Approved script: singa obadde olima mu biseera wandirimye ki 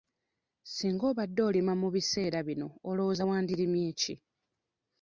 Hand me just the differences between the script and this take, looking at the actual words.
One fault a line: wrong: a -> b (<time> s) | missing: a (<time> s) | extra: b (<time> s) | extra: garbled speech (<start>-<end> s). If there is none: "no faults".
extra: bino olowooza (2.5 s)